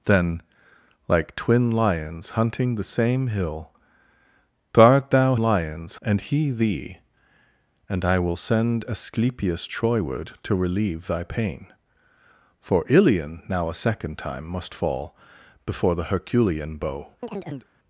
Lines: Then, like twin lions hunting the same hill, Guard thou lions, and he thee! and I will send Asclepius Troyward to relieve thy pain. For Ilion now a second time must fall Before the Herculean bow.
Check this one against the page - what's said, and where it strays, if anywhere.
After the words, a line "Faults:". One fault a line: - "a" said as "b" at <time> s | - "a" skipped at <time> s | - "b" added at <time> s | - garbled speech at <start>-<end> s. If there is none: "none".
Then, like twin lions hunting the same hill, Guard thou lions, and he thee! and I will send Asclepius Troyward to relieve thy pain. For Ilion now a second time must fall Before the Herculean bow.
Faults:
none